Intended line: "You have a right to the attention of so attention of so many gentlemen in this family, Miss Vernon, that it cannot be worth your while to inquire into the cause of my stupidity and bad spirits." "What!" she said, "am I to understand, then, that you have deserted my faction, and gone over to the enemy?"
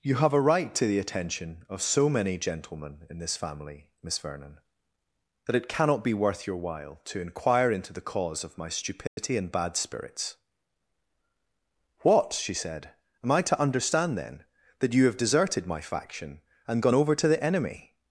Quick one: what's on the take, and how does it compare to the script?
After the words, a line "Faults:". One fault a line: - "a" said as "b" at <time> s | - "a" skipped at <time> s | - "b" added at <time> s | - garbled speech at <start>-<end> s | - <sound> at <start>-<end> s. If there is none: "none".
"You have a right to the attention of so many gentlemen in this family, Miss Vernon, that it cannot be worth your while to inquire into the cause of my stupidity and bad spirits." "What!" she said, "am I to understand, then, that you have deserted my faction, and gone over to the enemy?"
Faults:
- "attention of so" skipped at 2.1 s
- dropout at 9.1-9.2 s